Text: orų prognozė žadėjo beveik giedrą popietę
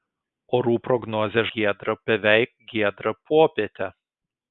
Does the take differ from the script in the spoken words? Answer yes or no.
yes